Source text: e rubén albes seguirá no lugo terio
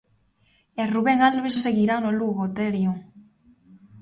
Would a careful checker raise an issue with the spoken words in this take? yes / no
no